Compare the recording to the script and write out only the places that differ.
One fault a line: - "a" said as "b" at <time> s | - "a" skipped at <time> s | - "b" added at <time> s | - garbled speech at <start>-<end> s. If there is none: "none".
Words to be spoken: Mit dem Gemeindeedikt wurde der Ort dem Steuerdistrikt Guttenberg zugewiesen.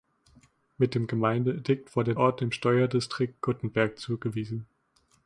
- "der" skipped at 2.1 s